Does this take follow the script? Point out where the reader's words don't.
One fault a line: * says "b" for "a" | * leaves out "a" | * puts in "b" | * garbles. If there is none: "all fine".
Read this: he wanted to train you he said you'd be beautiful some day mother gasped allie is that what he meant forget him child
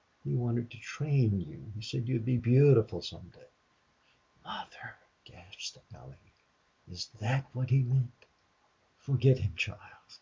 all fine